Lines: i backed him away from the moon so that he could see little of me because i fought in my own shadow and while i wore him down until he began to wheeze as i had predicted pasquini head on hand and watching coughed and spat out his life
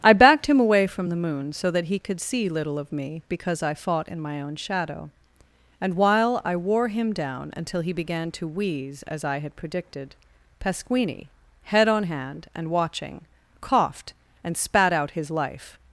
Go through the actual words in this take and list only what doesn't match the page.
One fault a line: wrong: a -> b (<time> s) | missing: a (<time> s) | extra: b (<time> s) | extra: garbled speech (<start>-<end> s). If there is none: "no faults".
no faults